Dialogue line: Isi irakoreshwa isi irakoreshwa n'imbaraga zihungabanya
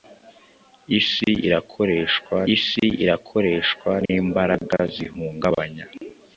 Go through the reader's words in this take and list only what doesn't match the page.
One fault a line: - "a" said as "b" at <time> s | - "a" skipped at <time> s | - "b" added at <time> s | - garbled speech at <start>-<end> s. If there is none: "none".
none